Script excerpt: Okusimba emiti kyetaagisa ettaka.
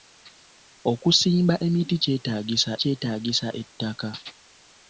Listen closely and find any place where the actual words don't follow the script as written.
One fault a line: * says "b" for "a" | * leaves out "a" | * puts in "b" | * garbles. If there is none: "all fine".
* puts in "kyetaagisa"